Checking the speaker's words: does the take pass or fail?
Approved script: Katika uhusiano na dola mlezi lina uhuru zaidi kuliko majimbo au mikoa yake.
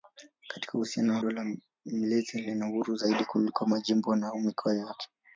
fail